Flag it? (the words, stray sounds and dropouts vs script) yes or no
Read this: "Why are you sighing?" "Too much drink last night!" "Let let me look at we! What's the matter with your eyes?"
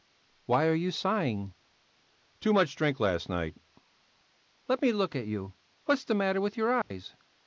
yes